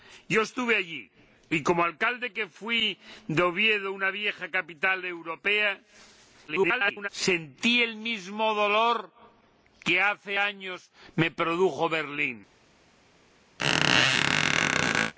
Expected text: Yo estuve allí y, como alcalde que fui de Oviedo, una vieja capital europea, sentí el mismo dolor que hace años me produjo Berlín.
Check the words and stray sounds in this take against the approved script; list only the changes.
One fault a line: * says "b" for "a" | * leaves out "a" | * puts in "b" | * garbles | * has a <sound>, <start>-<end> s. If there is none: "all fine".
* garbles
* has a squeak, 13.6-15.1 s